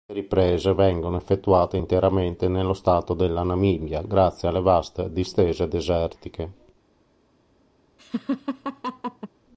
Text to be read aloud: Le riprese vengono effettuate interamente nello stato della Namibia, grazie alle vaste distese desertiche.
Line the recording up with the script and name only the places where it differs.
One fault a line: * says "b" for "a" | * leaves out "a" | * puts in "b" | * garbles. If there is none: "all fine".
all fine